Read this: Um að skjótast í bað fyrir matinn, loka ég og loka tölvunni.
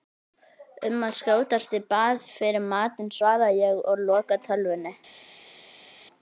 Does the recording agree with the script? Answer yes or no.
no